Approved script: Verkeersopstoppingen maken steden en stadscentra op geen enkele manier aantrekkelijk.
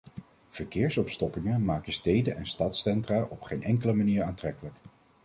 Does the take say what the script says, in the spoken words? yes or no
yes